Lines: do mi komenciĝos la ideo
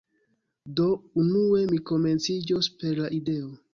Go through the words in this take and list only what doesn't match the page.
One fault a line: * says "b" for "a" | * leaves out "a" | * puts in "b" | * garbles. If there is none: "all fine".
* puts in "unue"
* puts in "per"